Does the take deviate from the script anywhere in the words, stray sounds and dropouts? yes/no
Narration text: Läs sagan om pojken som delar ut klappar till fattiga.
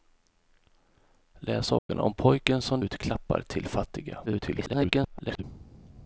yes